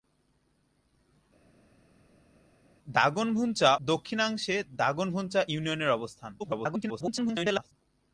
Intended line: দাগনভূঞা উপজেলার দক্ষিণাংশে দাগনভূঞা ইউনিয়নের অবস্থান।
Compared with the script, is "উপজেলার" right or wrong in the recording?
wrong